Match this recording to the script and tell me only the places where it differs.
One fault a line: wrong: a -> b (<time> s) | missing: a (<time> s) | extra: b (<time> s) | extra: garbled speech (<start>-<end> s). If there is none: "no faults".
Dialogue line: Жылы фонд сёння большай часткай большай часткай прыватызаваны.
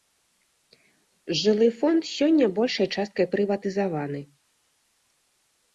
missing: большай часткай (3.2 s)